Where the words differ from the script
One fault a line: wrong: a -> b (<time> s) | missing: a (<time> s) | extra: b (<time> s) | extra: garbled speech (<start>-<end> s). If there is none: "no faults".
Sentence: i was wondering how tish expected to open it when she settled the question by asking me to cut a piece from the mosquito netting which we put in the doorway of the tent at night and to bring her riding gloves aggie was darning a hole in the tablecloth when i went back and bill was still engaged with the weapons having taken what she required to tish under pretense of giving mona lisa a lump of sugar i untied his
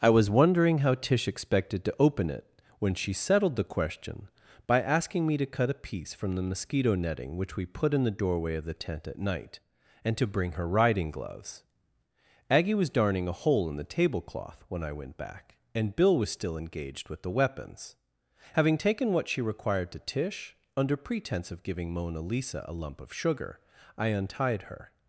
wrong: his -> her (24.6 s)